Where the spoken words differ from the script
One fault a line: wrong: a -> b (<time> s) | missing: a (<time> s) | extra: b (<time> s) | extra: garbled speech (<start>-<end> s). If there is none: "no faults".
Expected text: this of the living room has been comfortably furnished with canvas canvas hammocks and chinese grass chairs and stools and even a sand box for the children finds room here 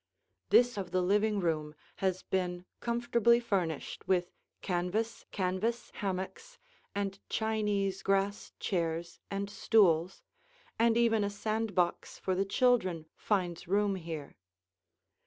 no faults